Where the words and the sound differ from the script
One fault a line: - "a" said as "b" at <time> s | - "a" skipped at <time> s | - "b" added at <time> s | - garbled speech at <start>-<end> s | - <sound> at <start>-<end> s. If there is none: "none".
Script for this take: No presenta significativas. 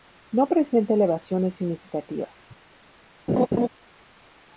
- "elevaciones" added at 0.9 s
- laugh at 3.3-3.7 s